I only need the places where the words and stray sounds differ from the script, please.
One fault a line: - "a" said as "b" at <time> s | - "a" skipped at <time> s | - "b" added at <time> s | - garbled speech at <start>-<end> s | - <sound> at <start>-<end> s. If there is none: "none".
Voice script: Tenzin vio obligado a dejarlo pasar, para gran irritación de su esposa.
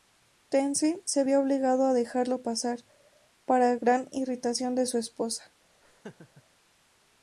- "se" added at 1.1 s
- laugh at 5.8-6.4 s